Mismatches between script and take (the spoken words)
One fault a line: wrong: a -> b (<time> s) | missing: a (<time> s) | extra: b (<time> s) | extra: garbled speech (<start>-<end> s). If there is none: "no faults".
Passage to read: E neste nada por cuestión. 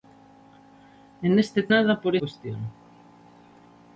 no faults